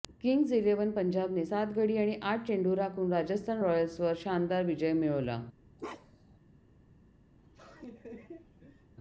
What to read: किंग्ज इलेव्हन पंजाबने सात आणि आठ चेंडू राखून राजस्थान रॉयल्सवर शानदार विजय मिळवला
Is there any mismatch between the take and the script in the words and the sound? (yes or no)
yes